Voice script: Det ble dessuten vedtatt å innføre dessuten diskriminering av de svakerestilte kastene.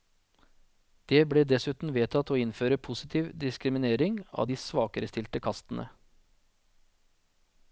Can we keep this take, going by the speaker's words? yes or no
no